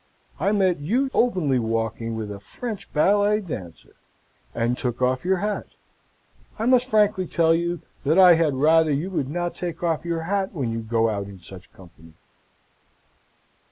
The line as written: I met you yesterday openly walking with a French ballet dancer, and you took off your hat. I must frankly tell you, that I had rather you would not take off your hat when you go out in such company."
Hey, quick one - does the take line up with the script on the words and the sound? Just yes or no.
no